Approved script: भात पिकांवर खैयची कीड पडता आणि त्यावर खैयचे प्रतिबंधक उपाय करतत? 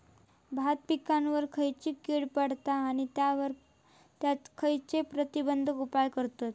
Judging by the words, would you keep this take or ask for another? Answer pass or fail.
pass